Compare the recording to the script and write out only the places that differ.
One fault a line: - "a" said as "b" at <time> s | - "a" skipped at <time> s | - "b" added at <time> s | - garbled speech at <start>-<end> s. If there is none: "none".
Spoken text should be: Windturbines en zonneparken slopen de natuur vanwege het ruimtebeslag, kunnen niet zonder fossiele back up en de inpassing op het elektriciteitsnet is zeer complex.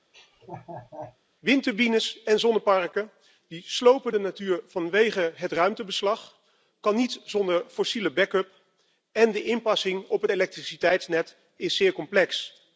none